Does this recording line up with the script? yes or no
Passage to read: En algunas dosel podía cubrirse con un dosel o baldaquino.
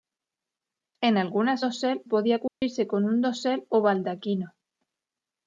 yes